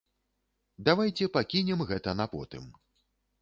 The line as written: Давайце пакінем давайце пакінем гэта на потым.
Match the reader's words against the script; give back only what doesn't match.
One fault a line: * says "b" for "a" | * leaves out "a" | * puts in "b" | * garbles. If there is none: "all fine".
* leaves out "давайце пакінем"